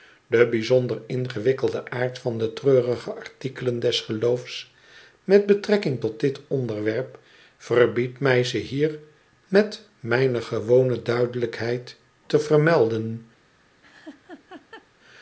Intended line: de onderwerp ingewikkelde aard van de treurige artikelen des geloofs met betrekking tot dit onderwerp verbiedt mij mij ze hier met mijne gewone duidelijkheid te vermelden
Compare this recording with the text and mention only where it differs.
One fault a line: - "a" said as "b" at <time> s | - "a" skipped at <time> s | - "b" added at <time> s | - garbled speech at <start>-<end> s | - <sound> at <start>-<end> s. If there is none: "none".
- "onderwerp" said as "bijzonder" at 0.5 s
- "mij" skipped at 8.4 s
- laugh at 13.8-14.9 s